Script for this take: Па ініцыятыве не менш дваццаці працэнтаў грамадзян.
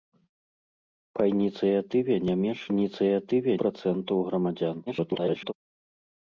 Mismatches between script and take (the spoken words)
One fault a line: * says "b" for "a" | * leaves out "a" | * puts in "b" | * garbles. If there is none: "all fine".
* says "ініцыятыве" for "дваццаці"
* garbles